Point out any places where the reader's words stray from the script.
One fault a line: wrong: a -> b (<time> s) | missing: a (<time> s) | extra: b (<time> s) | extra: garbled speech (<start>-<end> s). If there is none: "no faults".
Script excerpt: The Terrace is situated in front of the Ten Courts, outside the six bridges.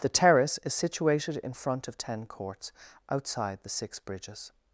missing: the (2.0 s)